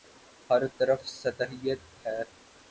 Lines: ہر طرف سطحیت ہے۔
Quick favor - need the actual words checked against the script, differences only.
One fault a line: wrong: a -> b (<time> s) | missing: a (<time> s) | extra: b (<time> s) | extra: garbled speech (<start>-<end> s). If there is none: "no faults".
no faults